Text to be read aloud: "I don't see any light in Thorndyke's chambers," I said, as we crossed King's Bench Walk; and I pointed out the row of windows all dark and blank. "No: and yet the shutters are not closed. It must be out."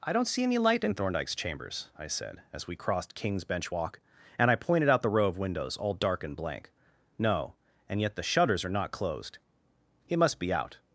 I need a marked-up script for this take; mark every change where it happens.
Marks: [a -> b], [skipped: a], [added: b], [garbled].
"I don't see any light in Thorndyke's chambers," I said, as we crossed King's Bench Walk; and I pointed out the row of windows all dark and blank. "No: and yet the shutters are not closed. It must be out."